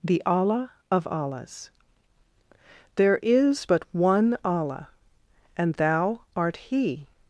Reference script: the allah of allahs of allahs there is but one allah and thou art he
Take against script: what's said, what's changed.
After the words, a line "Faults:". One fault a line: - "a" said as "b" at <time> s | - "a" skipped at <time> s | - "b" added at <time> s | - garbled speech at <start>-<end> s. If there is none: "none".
the allah of allahs there is but one allah and thou art he
Faults:
- "of allahs" skipped at 1.7 s